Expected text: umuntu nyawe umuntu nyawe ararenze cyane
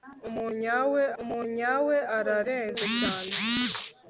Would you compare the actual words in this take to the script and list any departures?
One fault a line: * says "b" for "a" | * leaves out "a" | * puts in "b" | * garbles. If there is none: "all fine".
all fine